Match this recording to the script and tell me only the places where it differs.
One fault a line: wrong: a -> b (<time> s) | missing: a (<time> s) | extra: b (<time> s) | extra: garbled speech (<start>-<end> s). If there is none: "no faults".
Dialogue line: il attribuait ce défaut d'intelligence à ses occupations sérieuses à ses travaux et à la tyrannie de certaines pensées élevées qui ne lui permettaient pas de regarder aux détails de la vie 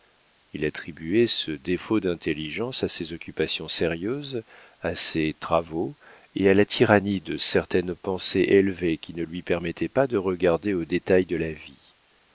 no faults